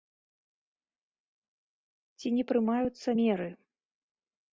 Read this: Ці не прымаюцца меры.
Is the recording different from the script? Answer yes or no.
no